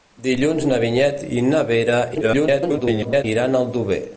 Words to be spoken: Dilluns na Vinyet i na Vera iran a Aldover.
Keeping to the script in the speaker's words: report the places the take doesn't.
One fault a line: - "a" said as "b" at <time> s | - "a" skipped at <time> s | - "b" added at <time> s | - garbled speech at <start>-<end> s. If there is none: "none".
- garbled speech at 2.1-3.2 s